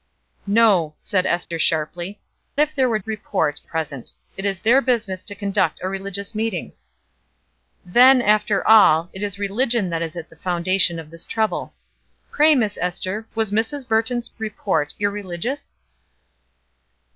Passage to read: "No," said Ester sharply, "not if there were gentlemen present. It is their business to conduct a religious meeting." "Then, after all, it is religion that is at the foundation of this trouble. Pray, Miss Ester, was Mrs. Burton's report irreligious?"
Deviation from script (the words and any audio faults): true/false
true